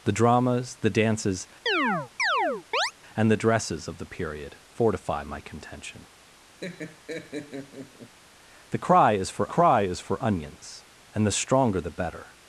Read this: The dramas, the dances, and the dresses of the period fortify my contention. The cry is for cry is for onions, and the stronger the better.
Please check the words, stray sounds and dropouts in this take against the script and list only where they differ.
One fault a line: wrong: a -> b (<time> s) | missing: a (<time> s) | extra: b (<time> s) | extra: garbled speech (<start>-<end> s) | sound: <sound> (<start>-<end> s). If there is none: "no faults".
sound: chirp (1.7-2.9 s)
sound: laugh (6.6-8.2 s)